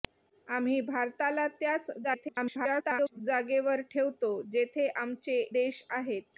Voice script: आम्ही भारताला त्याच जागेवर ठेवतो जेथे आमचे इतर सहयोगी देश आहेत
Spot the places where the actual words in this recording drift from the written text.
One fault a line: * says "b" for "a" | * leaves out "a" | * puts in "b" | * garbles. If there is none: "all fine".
* garbles
* leaves out "इतर सहयोगी"